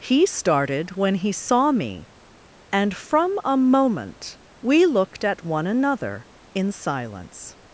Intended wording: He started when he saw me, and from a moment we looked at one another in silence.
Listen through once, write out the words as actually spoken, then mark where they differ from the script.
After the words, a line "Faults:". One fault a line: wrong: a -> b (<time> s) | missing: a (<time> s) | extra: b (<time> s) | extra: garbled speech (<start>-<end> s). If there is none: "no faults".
He started when he saw me, and from a moment we looked at one another in silence.
Faults:
no faults